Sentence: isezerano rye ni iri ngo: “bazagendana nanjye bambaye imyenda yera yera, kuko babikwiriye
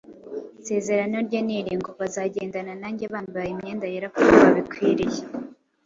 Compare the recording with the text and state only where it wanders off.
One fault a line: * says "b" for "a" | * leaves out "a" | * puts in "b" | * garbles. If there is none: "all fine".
* leaves out "yera"